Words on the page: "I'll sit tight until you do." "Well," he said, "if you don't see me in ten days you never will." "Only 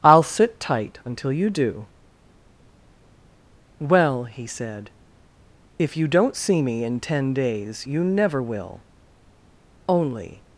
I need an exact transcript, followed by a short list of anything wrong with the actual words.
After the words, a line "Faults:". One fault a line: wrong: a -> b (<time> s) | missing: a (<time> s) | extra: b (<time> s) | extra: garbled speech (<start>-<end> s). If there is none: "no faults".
"I'll sit tight until you do." "Well," he said, "if you don't see me in ten days you never will." "Only
Faults:
no faults